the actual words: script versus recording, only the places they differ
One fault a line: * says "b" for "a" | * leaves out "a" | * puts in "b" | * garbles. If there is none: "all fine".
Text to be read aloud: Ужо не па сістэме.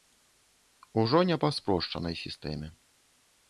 * puts in "спрошчанай"